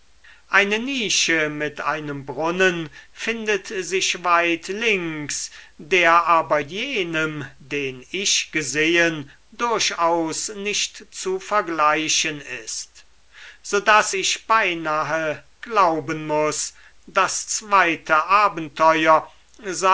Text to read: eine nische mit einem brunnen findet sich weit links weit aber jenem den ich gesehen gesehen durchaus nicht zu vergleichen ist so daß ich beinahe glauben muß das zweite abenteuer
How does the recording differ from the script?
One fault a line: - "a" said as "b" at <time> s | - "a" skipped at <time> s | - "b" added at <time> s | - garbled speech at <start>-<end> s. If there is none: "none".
- "weit" said as "der" at 5.8 s
- "gesehen" skipped at 9.3 s